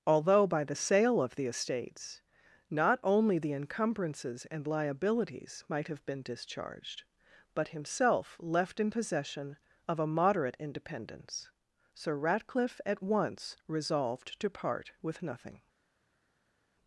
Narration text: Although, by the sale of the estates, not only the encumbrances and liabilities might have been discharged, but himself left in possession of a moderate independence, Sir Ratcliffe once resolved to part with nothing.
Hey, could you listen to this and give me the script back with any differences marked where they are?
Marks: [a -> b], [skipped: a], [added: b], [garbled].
Although, by the sale of the estates, not only the encumbrances and liabilities might have been discharged, but himself left in possession of a moderate independence, Sir Ratcliffe [added: at] once resolved to part with nothing.